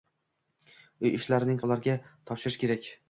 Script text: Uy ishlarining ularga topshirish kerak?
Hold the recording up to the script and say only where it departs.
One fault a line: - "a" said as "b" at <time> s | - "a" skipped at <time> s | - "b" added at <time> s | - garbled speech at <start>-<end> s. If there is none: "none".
none